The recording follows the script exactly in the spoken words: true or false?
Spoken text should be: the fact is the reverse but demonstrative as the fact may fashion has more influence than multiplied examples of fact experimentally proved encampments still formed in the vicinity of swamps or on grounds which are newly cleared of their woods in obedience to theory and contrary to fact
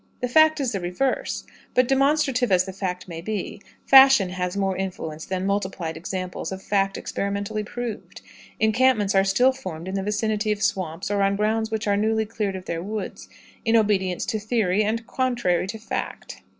false